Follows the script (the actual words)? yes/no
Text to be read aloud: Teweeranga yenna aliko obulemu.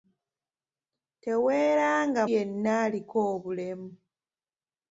yes